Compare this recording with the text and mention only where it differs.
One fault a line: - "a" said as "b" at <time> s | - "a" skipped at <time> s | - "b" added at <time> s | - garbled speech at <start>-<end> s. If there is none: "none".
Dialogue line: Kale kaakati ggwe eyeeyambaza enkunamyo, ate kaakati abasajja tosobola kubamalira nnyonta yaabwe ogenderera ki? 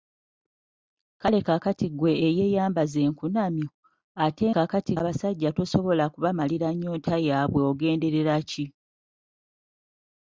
none